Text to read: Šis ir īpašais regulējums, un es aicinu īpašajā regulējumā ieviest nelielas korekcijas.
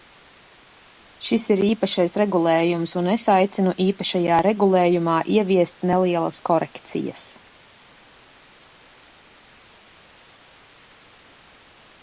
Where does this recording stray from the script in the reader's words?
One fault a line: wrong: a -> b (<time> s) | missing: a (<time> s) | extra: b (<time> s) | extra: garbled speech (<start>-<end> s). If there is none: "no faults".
no faults